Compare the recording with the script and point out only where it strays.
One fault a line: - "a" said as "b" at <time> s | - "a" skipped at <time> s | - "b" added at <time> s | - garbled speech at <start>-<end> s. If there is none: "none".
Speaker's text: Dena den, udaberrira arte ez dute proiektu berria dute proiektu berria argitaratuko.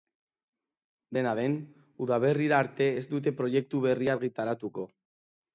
- "dute proiektu berria" skipped at 4.2 s